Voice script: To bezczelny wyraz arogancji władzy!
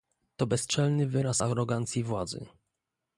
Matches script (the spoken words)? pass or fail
pass